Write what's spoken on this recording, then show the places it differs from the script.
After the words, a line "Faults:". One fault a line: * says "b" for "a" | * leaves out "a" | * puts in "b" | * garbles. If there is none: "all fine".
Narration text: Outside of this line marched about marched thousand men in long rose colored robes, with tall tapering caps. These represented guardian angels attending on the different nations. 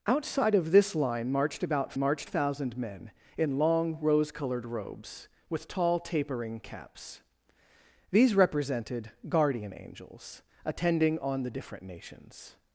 Outside of this line marched about marched thousand men in long rose colored robes, with tall tapering caps. These represented guardian angels attending on the different nations.
Faults:
all fine